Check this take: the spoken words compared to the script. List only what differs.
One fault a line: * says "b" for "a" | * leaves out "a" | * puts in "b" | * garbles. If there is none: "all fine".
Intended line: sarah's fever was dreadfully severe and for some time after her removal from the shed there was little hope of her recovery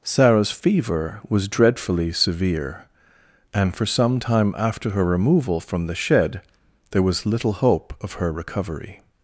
all fine